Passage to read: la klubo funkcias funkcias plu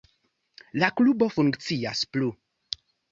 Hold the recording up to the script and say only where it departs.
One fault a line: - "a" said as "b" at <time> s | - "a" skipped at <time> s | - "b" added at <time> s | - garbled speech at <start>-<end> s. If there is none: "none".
- "funkcias" skipped at 2.0 s